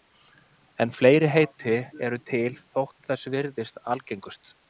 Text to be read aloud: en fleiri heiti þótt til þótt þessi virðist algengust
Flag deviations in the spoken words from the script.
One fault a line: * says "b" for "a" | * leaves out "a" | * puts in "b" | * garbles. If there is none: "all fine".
* says "eru" for "þótt"